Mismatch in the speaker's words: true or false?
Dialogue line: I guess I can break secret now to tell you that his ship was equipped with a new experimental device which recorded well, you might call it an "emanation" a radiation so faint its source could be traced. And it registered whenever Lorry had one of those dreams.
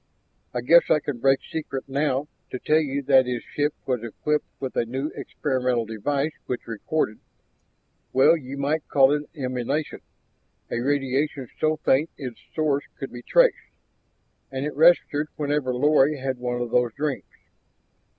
false